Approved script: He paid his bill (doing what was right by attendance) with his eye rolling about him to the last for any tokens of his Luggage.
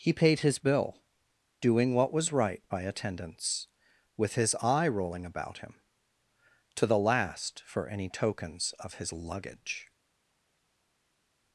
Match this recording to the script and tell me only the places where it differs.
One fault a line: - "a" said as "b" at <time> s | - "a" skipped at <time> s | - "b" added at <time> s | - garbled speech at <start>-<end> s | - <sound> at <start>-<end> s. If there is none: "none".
none